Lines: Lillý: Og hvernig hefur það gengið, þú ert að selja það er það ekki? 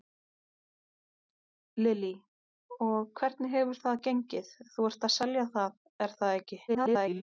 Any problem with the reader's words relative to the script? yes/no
yes